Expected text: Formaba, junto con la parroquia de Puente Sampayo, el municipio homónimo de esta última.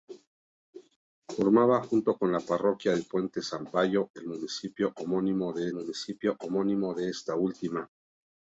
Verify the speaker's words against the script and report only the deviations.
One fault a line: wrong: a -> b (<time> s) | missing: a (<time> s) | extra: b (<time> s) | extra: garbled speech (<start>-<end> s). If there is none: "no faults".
extra: municipio homónimo de (5.8 s)